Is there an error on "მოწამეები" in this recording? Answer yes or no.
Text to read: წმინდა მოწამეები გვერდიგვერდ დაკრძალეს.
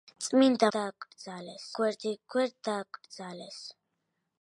yes